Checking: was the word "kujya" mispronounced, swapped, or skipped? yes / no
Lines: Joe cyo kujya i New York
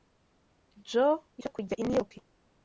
no